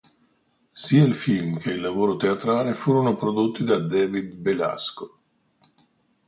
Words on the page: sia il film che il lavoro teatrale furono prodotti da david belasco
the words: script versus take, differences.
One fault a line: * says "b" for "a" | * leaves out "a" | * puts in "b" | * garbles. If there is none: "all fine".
all fine